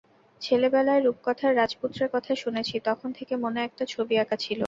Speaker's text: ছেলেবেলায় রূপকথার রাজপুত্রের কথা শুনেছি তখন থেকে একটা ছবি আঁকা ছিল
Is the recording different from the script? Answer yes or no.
yes